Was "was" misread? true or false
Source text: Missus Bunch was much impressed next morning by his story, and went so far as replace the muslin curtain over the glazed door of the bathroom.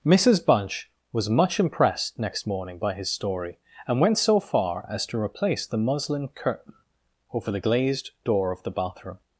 false